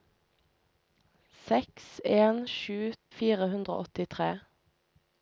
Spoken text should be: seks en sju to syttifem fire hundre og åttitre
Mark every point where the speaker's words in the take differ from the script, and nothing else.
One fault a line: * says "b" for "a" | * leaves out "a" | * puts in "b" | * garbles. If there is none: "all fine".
* leaves out "to syttifem"